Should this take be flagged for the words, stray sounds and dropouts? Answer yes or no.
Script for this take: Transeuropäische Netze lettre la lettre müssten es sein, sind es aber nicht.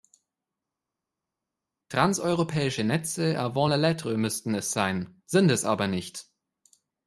yes